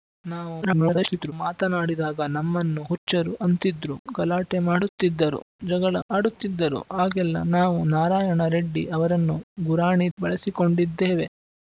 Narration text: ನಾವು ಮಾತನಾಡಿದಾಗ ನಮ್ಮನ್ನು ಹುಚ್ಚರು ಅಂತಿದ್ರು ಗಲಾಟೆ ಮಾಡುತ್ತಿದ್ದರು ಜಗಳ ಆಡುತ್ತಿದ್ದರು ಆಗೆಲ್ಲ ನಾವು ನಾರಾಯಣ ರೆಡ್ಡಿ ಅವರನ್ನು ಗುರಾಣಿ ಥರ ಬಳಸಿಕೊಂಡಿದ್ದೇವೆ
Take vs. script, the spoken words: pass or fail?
fail